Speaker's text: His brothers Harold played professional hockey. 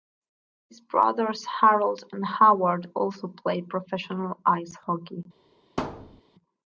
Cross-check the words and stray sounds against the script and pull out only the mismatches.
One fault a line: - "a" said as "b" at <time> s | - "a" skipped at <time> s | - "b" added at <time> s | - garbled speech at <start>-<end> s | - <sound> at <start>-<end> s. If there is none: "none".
- "and Howard also" added at 2.1 s
- "ice" added at 4.5 s
- thud at 5.8-6.2 s